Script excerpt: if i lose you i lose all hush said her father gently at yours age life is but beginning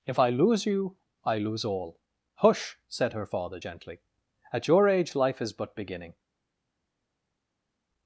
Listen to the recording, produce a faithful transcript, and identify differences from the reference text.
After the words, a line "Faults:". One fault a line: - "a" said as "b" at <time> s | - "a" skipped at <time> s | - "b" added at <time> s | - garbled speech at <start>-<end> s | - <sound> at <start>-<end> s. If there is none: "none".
if i lose you i lose all hush said her father gently at your age life is but beginning
Faults:
- "yours" said as "your" at 4.7 s